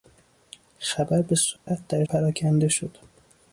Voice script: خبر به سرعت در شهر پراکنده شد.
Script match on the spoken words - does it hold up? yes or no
no